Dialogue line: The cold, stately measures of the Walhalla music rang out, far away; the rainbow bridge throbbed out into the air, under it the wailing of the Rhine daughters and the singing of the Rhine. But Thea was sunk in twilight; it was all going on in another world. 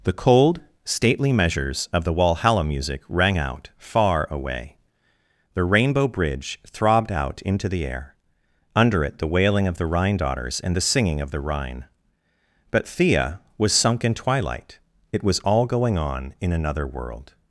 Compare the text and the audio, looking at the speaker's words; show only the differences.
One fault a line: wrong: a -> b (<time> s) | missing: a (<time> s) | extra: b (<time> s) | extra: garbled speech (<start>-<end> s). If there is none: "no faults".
no faults